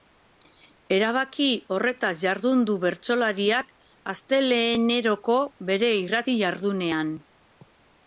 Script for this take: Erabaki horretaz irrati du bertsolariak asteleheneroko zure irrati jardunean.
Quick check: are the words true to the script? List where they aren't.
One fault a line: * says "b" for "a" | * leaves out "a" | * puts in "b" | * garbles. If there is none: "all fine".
* says "jardun" for "irrati"
* says "bere" for "zure"